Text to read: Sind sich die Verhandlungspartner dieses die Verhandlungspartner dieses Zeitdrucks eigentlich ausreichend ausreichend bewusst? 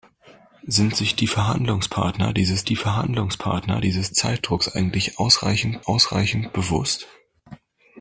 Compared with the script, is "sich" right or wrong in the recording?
right